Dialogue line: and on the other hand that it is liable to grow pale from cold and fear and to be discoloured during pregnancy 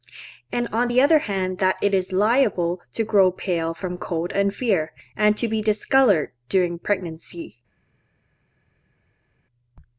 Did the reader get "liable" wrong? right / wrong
right